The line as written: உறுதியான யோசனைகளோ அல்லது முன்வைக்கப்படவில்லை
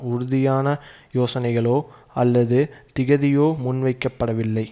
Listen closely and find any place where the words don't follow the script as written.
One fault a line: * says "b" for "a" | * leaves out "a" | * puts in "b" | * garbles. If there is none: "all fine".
* puts in "திகதியோ"